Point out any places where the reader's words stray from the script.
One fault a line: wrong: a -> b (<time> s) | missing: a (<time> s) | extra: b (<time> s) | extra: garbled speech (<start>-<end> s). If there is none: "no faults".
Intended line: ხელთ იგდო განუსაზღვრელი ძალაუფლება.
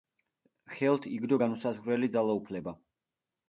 no faults